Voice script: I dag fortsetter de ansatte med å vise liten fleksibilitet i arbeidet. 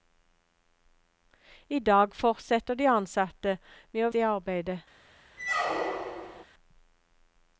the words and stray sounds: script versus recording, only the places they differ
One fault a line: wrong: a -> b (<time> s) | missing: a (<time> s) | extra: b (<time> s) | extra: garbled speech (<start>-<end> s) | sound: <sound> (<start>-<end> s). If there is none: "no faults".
missing: vise liten fleksibilitet (4.1 s)
sound: squeak (5.4-6.4 s)